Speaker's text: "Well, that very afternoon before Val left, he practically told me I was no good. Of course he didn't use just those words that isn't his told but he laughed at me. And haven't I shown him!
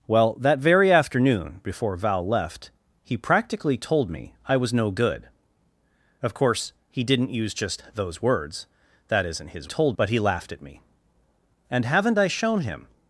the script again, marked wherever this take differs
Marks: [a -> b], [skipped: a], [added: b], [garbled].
"Well, that very afternoon before Val left, he practically told me I was no good. Of course he didn't use just those words that isn't his told but he laughed at me. And haven't I shown him!